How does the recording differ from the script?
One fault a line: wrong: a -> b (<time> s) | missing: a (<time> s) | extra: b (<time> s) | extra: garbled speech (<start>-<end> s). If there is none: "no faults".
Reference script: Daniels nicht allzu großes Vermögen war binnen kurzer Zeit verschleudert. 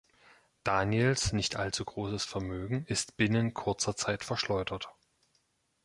wrong: war -> ist (2.9 s)